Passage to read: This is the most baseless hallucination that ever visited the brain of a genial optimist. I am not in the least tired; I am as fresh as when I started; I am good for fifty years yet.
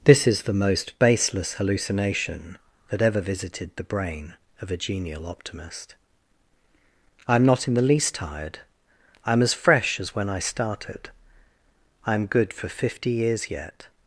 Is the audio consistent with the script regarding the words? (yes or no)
yes